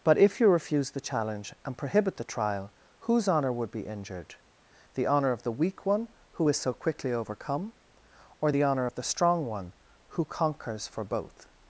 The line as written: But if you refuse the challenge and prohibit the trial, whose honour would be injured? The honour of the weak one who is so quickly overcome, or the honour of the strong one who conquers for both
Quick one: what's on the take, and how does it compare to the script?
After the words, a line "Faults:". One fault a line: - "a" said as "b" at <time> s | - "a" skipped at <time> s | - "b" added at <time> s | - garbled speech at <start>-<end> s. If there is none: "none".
But if you refuse the challenge and prohibit the trial, whose honour would be injured? The honour of the weak one who is so quickly overcome, or the honour of the strong one who conquers for both
Faults:
none